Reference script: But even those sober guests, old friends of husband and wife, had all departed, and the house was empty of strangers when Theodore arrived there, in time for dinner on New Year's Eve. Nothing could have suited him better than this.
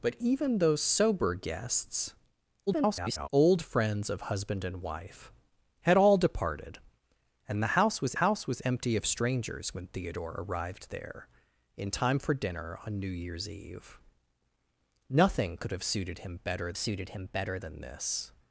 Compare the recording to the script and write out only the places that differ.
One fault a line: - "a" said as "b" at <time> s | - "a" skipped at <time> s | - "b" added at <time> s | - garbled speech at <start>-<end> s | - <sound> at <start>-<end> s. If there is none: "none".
- garbled speech at 2.7-3.3 s
- "house was" added at 8.2 s
- "suited him better" added at 16.8 s